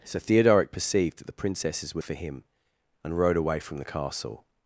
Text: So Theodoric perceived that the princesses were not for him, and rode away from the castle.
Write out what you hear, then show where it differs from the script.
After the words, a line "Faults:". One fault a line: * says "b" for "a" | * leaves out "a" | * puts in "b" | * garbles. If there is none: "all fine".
So Theodoric perceived that the princesses were for him, and rode away from the castle.
Faults:
* leaves out "not"